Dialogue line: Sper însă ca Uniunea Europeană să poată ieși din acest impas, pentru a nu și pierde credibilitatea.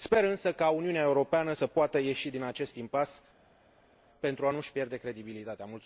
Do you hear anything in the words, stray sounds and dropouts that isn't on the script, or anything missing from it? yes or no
no